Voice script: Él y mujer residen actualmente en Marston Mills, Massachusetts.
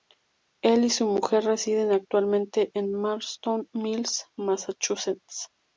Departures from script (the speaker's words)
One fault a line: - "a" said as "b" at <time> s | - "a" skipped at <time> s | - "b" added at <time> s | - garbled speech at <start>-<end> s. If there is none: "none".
- "su" added at 0.9 s